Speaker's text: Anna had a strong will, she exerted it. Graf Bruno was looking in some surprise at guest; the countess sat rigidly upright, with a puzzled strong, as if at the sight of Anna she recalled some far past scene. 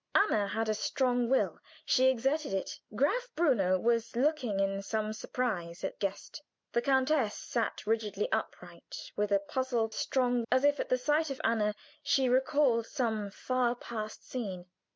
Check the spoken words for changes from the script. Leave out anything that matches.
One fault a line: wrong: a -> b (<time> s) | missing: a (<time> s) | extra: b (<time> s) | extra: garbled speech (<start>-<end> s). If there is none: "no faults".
no faults